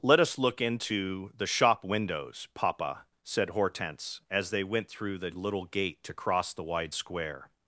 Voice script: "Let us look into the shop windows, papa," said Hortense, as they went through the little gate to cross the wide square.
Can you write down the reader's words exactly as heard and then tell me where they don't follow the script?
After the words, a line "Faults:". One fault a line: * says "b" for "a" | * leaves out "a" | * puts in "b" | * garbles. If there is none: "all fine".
"Let us look into the shop windows, papa," said Hortense, as they went through the little gate to cross the wide square.
Faults:
all fine